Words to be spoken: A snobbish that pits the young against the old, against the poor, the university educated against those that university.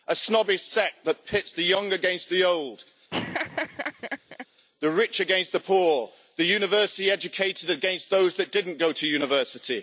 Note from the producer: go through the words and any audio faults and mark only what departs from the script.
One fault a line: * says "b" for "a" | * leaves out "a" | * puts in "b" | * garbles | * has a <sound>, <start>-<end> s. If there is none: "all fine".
* puts in "sect"
* has a laugh, 3.1-4.5 s
* puts in "the rich"
* puts in "didn't go to"